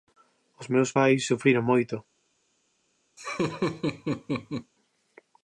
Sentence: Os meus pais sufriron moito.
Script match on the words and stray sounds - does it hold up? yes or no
no